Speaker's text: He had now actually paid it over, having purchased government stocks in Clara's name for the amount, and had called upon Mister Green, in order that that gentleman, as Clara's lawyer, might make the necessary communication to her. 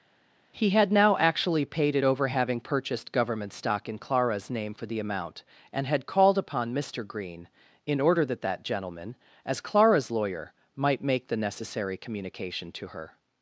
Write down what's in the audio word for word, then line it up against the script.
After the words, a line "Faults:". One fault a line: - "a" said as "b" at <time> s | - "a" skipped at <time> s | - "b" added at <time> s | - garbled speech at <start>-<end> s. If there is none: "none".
He had now actually paid it over, having purchased government stock in Clara's name for the amount, and had called upon Mister Green, in order that that gentleman, as Clara's lawyer, might make the necessary communication to her.
Faults:
- "stocks" said as "stock" at 3.5 s